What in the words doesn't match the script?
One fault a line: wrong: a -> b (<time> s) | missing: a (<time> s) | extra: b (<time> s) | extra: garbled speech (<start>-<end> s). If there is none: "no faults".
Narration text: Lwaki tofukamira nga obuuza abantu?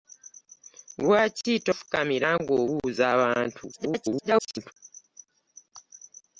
extra: garbled speech (3.7-4.7 s)